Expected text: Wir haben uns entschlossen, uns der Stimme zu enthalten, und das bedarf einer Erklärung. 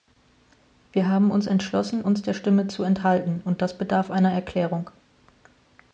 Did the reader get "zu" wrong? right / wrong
right